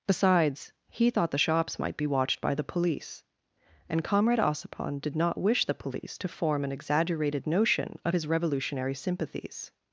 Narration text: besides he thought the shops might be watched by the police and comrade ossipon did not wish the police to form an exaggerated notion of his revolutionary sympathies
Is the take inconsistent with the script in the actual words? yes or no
no